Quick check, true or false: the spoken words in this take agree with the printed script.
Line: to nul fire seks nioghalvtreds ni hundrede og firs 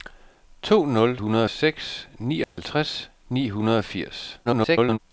false